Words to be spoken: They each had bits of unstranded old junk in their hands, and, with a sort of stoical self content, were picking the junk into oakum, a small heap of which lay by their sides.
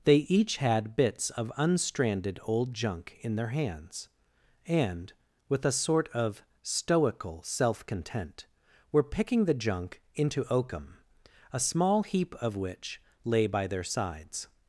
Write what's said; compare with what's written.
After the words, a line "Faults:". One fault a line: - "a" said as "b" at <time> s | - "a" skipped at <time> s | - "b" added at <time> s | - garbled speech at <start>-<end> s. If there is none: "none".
They each had bits of unstranded old junk in their hands, and, with a sort of stoical self content, were picking the junk into oakum, a small heap of which lay by their sides.
Faults:
none